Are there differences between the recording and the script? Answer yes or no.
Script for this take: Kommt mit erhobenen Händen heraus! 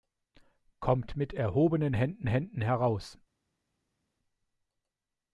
yes